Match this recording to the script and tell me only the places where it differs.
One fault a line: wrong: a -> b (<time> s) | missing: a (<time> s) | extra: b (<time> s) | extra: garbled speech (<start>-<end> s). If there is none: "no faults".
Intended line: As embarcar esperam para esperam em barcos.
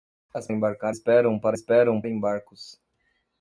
no faults